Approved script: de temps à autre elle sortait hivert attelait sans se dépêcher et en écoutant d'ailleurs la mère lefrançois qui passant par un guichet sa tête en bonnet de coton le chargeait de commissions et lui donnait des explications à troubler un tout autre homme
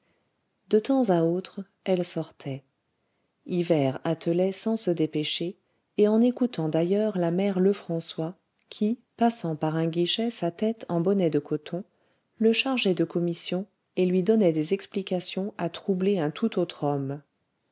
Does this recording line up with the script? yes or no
yes